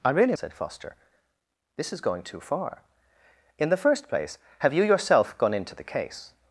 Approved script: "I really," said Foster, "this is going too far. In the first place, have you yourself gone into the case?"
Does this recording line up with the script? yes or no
yes